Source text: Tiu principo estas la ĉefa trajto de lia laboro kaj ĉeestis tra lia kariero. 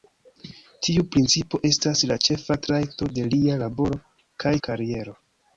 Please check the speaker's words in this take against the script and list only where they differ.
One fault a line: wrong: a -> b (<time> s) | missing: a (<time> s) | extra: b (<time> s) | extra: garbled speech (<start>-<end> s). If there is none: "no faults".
missing: ĉeestis tra lia (4.5 s)